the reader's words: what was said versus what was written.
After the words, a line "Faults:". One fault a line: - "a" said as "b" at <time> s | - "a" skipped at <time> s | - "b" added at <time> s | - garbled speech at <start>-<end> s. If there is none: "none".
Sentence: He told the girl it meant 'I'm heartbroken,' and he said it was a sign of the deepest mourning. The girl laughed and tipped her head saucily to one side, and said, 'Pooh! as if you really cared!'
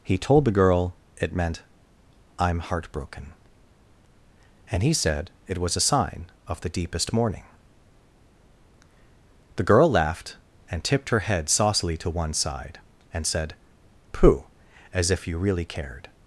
He told the girl it meant 'I'm heartbroken,' and he said it was a sign of the deepest mourning. The girl laughed and tipped her head saucily to one side, and said, 'Pooh! as if you really cared!'
Faults:
none